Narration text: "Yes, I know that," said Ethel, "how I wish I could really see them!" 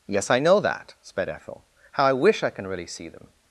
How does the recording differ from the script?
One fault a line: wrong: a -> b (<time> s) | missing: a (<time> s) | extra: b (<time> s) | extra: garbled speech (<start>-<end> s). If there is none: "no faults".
wrong: said -> sped (1.0 s)
wrong: could -> can (2.5 s)